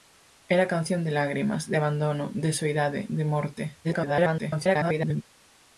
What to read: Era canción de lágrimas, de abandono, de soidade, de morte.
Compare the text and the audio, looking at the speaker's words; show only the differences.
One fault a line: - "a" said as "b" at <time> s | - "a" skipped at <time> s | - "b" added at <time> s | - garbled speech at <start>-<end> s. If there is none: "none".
- garbled speech at 3.8-5.2 s